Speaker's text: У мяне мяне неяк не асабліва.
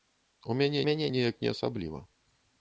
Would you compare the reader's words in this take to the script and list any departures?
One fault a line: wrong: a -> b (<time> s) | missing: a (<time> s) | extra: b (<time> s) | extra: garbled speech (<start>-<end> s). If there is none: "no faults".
no faults